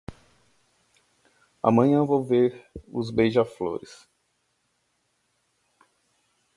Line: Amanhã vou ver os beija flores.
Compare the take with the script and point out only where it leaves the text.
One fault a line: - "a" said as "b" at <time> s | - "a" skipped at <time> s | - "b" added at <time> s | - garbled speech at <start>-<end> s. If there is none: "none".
none